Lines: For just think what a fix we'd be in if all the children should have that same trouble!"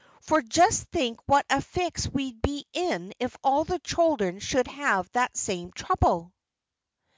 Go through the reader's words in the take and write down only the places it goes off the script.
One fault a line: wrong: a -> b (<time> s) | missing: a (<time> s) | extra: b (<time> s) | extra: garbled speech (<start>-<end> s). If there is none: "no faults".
no faults